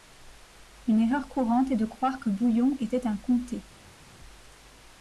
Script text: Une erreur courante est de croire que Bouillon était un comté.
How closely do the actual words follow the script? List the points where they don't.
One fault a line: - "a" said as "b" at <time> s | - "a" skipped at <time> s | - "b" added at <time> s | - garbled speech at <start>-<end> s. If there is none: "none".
none